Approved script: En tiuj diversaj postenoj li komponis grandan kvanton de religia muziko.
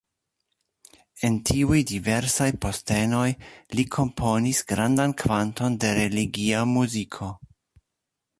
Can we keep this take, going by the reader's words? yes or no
yes